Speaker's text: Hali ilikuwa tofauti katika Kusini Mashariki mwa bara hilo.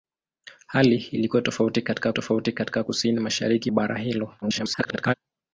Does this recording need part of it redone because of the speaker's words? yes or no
yes